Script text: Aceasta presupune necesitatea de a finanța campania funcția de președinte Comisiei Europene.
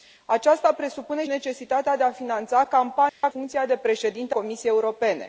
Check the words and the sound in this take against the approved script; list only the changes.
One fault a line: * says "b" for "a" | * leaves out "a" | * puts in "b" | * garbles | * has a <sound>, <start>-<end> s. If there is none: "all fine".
* has a dropout, 3.1-3.2 s